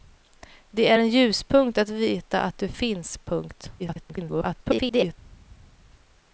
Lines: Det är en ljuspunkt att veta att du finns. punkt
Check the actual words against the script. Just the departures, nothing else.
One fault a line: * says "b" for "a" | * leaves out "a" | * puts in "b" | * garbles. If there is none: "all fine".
* garbles